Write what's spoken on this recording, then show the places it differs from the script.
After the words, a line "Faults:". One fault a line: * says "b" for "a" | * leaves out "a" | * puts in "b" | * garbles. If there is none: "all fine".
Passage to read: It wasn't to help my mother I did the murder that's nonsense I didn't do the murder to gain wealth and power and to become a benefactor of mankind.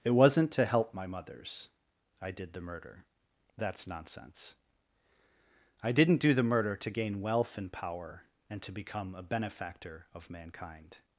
It wasn't to help my mothers I did the murder that's nonsense I didn't do the murder to gain wealth and power and to become a benefactor of mankind.
Faults:
* says "mothers" for "mother"